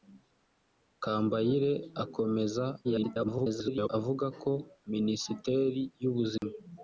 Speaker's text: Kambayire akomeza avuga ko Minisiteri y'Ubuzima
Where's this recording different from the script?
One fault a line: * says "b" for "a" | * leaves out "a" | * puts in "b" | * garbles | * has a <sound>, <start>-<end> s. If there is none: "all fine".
* garbles
* has a dropout, 6.4-6.4 s